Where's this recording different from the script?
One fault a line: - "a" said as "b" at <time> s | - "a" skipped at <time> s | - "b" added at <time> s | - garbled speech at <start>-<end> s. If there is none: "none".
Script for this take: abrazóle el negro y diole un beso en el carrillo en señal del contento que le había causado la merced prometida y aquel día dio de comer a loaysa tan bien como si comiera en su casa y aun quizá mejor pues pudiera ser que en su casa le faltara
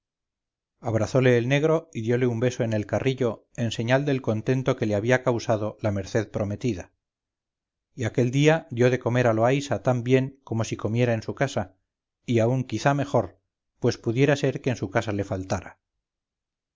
none